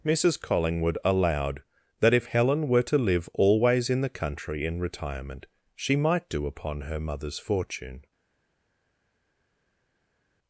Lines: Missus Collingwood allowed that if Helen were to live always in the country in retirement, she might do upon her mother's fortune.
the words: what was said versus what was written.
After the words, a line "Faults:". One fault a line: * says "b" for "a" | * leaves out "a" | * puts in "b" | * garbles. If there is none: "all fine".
Missus Collingwood allowed that if Helen were to live always in the country in retirement, she might do upon her mother's fortune.
Faults:
all fine